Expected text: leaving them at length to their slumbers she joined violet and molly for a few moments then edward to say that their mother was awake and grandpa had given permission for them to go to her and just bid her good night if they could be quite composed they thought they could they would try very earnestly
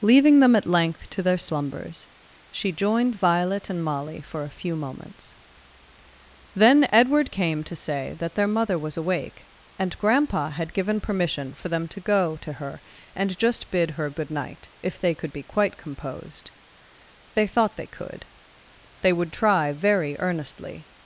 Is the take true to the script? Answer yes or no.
no